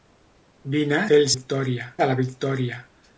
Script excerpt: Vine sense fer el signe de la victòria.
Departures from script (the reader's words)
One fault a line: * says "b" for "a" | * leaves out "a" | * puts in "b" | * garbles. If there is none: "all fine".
* leaves out "sense"
* says "victòria" for "signe"